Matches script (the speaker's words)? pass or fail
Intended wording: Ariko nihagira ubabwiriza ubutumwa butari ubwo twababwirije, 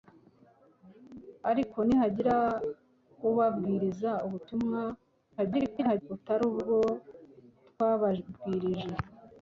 fail